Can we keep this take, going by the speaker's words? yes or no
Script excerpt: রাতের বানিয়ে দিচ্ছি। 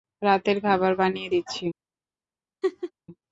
no